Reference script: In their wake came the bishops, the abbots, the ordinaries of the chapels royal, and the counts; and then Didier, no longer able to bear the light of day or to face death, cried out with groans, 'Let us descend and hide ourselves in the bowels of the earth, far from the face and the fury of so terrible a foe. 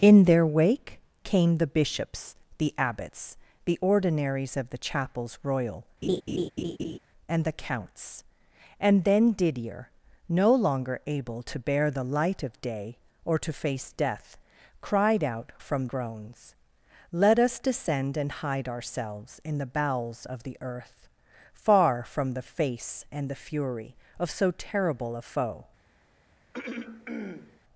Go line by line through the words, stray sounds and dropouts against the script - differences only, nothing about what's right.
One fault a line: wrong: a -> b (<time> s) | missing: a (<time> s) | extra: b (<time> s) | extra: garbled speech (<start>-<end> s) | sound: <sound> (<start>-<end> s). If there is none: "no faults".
sound: laugh (6.0-7.0 s)
wrong: with -> from (15.6 s)
sound: throat clearing (26.5-27.6 s)